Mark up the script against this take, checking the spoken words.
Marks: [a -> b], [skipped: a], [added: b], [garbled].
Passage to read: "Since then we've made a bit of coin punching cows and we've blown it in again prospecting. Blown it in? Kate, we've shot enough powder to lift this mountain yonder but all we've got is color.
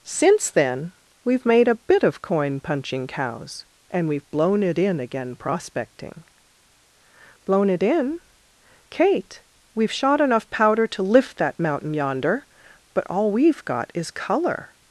"Since then we've made a bit of coin punching cows and we've blown it in again prospecting. Blown it in? Kate, we've shot enough powder to lift [this -> that] mountain yonder but all we've got is color.